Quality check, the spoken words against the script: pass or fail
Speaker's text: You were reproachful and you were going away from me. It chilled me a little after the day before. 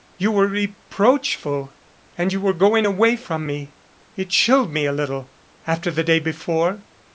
pass